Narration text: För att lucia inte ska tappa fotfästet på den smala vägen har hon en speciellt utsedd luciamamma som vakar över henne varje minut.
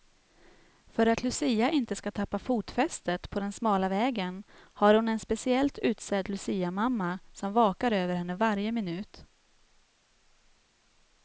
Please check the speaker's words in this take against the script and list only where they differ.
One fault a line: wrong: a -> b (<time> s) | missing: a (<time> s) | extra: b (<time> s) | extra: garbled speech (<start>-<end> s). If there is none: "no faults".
no faults